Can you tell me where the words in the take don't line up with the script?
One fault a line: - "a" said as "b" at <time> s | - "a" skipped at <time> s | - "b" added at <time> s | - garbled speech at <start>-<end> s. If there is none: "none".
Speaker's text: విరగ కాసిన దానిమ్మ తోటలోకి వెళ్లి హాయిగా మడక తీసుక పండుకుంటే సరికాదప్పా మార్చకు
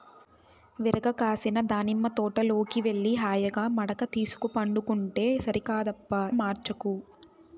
none